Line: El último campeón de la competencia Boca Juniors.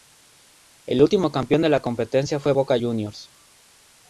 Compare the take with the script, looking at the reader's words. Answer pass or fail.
fail